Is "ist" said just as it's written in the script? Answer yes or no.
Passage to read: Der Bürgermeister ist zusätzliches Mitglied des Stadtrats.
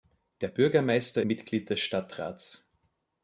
no